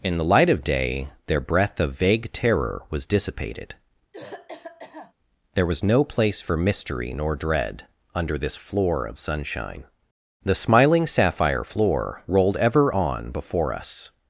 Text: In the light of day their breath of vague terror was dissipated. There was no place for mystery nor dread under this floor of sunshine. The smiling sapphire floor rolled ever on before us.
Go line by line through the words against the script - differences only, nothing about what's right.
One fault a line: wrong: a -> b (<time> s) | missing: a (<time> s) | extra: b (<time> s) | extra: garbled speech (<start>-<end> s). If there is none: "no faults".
no faults